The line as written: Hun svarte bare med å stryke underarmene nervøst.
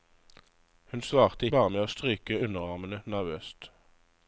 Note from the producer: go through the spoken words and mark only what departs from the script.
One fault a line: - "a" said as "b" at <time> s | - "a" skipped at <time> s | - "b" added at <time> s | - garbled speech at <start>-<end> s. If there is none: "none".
none